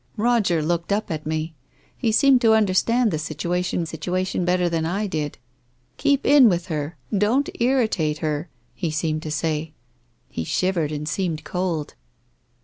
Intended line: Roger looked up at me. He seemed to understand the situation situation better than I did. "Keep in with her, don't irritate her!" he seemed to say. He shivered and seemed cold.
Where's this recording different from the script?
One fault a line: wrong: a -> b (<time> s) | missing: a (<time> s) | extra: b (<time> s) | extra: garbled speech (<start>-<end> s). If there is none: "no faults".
no faults